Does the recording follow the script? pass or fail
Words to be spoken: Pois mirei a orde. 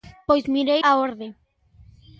pass